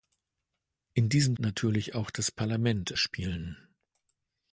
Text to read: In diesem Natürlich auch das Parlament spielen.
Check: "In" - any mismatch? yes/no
no